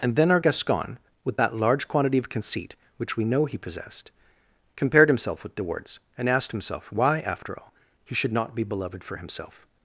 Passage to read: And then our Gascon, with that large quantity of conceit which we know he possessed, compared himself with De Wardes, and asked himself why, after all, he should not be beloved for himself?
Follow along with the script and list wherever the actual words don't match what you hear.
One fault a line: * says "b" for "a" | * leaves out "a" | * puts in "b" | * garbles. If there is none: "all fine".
all fine